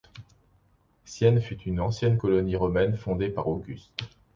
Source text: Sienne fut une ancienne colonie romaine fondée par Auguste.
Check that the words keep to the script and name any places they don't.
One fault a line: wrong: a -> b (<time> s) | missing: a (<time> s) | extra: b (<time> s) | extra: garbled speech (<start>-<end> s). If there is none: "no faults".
no faults